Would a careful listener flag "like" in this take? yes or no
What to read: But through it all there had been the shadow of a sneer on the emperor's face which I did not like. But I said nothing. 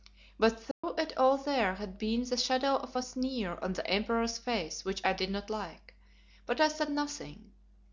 no